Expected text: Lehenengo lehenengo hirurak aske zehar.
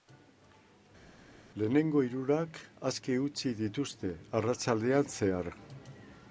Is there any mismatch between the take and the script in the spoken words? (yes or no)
yes